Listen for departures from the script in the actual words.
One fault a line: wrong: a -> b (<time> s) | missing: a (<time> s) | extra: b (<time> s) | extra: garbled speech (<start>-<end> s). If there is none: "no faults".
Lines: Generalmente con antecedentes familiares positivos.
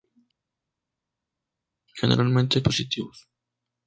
missing: con antecedentes familiares (2.6 s)